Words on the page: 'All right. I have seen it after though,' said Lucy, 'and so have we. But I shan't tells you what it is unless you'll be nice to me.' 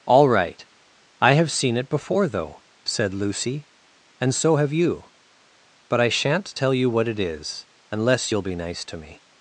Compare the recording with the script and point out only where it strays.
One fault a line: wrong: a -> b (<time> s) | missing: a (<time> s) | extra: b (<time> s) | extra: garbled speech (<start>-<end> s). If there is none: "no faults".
wrong: after -> before (1.9 s)
wrong: we -> you (4.7 s)
wrong: tells -> tell (6.5 s)